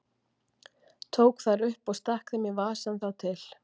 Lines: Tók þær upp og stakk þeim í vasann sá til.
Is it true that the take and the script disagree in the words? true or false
false